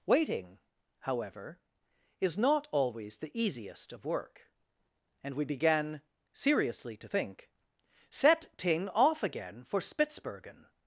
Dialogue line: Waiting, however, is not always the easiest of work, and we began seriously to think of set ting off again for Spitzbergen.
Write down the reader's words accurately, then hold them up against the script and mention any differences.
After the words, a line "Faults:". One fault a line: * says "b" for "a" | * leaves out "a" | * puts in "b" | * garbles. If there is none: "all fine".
Waiting, however, is not always the easiest of work, and we began seriously to think set ting off again for Spitzbergen.
Faults:
* leaves out "of"